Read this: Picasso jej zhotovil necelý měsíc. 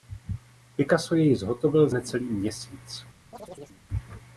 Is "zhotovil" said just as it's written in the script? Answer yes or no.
yes